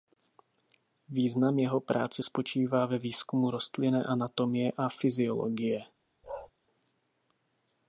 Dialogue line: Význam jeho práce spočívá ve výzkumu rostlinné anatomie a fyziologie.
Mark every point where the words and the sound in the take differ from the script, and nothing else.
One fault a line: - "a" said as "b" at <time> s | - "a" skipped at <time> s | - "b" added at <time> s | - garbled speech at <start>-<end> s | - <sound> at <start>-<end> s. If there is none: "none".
- bark at 6.2-6.5 s